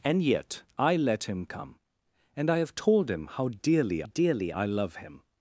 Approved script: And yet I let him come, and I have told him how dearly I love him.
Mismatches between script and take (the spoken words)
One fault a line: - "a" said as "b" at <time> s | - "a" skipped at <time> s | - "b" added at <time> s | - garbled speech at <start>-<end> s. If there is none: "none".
- "dearly" added at 4.0 s